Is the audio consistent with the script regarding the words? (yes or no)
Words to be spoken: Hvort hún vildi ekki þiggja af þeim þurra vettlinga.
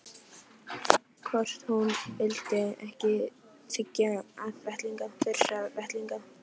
no